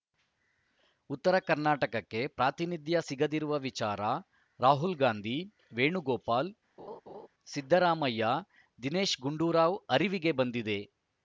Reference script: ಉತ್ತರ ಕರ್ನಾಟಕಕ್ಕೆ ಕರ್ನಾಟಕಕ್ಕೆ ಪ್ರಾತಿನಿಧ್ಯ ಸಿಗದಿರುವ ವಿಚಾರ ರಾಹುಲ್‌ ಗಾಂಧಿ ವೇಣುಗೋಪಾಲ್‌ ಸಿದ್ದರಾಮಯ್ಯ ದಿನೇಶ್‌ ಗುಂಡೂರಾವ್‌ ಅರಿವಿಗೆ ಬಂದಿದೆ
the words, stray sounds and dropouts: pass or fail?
fail